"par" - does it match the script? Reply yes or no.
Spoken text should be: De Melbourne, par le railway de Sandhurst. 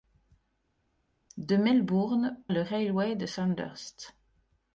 no